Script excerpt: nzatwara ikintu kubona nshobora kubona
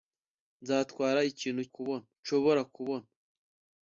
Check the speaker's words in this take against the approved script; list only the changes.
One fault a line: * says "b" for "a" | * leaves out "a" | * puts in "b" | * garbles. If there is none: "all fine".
all fine